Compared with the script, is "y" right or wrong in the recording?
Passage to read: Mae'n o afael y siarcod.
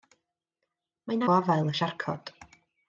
right